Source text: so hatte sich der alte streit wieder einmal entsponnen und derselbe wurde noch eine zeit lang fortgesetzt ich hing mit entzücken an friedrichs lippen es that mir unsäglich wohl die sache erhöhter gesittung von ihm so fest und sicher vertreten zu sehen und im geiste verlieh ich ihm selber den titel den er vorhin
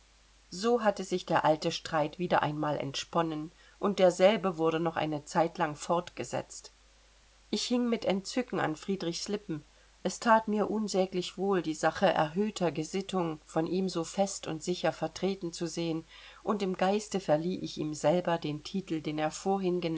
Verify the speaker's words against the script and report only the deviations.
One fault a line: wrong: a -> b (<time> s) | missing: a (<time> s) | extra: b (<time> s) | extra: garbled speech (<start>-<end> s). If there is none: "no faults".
no faults